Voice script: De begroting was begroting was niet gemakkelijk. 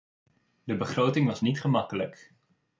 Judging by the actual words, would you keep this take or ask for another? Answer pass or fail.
fail